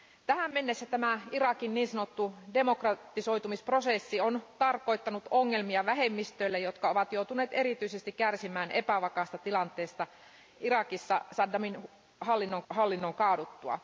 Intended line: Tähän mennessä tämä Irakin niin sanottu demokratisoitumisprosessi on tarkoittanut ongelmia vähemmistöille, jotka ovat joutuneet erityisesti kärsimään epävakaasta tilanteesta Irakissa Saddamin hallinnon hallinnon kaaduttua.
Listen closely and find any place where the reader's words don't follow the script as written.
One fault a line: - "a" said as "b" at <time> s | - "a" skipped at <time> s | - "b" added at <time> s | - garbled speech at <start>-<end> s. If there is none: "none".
none